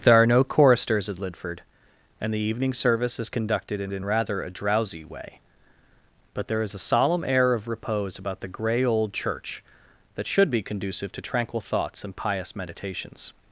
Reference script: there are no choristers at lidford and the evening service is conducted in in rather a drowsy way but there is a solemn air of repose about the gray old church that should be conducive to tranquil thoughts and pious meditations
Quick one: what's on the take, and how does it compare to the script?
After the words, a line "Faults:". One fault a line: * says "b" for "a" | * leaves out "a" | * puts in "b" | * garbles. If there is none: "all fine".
there are no choristers at lidford and the evening service is conducted in in rather a drowsy way but there is a solemn air of repose about the gray old church that should be conducive to tranquil thoughts and pious meditations
Faults:
all fine